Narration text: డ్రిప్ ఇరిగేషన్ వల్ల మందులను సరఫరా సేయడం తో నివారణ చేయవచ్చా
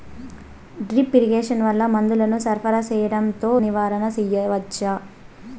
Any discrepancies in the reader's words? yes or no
no